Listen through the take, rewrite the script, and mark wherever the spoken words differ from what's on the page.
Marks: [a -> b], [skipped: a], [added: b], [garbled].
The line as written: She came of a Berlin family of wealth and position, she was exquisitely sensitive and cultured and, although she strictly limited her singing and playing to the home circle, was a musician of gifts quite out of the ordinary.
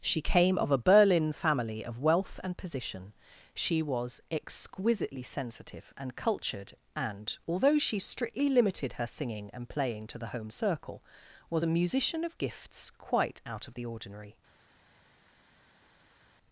She came of a Berlin family of wealth and position, she was exquisitely sensitive and cultured and, although she strictly limited her singing and playing to the home circle, was a musician of gifts quite out of the ordinary.